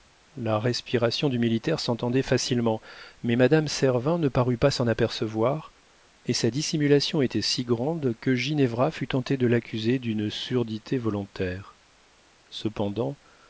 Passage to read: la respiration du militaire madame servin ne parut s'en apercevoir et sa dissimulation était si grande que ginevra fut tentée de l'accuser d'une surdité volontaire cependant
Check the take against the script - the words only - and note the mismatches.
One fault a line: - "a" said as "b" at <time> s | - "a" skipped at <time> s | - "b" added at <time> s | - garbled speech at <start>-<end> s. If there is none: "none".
- "s'entendait facilement mais" added at 1.8 s
- "pas" added at 4.6 s